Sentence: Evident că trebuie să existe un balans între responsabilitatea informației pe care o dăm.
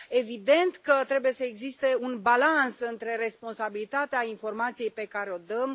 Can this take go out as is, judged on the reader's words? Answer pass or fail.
pass